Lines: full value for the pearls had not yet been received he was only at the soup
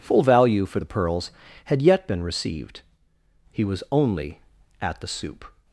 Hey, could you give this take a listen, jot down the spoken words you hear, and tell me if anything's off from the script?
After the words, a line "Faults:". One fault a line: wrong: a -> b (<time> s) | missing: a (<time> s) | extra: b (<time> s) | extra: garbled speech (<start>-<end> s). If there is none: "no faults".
full value for the pearls had yet been received he was only at the soup
Faults:
missing: not (1.8 s)